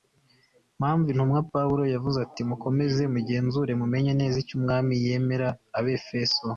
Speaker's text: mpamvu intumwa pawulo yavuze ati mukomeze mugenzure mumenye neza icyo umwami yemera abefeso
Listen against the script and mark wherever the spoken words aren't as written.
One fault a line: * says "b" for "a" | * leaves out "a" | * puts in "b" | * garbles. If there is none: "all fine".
all fine